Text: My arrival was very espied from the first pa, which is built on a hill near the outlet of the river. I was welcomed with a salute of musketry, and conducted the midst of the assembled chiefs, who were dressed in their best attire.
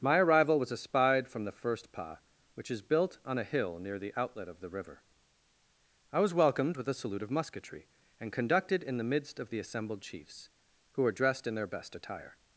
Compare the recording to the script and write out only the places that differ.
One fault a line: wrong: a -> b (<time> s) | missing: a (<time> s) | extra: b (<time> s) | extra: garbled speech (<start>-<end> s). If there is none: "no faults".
missing: very (0.7 s)
extra: in (8.8 s)